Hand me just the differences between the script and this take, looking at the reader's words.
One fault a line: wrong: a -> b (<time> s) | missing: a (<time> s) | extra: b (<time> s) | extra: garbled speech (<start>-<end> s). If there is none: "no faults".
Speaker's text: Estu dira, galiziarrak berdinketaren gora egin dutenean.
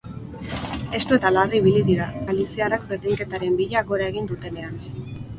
extra: eta larri ibili (1.1 s)
extra: bila (3.6 s)